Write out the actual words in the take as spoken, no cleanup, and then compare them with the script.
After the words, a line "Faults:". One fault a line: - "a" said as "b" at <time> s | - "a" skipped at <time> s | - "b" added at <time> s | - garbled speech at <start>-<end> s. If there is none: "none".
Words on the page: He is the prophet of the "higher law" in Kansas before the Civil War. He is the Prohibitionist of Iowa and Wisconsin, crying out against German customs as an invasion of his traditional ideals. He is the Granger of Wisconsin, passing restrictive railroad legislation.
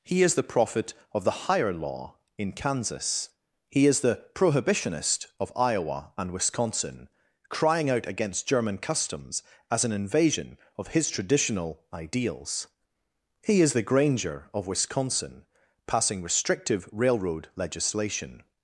He is the prophet of the "higher law" in Kansas. He is the Prohibitionist of Iowa and Wisconsin, crying out against German customs as an invasion of his traditional ideals. He is the Granger of Wisconsin, passing restrictive railroad legislation.
Faults:
- "before the Civil War" skipped at 3.3 s